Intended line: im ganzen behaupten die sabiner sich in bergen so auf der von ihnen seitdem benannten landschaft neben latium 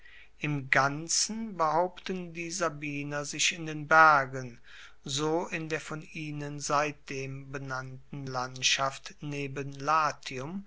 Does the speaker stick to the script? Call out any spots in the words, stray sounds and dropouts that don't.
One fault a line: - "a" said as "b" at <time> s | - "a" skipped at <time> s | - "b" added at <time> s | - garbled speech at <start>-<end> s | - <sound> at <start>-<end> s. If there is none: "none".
- "den" added at 3.7 s
- "auf" said as "in" at 5.5 s